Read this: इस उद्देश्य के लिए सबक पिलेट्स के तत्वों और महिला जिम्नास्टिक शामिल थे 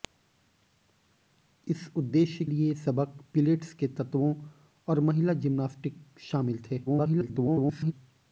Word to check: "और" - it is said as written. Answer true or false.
true